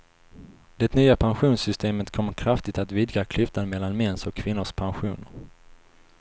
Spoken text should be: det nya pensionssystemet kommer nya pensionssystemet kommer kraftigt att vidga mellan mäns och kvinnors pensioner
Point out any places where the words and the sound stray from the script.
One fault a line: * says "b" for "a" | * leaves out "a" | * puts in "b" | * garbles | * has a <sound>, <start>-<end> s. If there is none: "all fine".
* leaves out "nya pensionssystemet kommer"
* puts in "klyftan"